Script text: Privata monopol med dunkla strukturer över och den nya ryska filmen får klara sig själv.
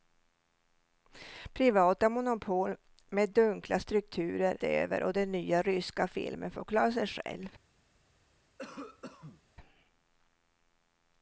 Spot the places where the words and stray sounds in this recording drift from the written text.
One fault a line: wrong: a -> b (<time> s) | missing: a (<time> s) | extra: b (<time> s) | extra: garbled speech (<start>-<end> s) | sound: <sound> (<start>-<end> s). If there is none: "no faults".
sound: cough (8.6-9.4 s)